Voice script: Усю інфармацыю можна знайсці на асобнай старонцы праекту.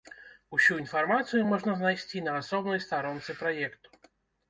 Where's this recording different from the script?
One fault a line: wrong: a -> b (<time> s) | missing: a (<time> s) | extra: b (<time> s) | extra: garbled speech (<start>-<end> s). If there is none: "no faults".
no faults